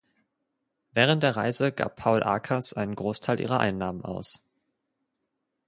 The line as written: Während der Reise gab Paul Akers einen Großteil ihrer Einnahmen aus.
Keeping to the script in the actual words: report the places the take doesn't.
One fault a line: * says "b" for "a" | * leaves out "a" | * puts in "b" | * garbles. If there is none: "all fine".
all fine